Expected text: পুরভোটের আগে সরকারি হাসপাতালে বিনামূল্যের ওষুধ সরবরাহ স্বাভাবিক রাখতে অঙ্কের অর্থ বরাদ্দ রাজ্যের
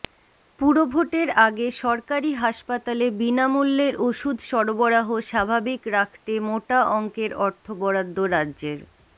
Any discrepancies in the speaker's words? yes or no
yes